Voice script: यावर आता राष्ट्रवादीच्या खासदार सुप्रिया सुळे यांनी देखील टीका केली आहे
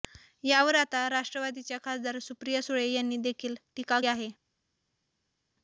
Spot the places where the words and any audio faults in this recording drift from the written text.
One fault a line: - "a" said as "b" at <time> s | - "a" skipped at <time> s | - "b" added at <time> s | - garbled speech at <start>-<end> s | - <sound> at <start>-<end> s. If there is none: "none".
- "केली" skipped at 4.0 s